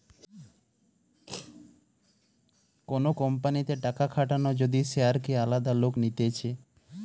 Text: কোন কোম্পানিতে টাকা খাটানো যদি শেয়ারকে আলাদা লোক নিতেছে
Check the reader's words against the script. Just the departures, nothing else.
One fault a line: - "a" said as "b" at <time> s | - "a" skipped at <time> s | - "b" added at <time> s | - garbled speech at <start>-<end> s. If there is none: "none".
none